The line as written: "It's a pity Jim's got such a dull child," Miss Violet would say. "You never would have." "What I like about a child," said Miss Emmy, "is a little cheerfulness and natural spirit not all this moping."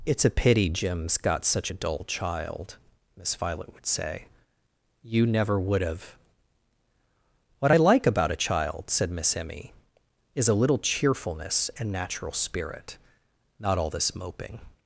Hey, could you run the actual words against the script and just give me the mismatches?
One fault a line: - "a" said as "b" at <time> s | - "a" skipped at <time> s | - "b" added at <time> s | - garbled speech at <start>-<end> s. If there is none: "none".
none